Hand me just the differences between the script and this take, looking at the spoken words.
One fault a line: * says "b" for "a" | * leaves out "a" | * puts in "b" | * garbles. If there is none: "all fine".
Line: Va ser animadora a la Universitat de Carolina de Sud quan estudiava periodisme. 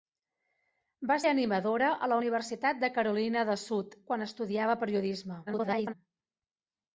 * leaves out "ser"
* garbles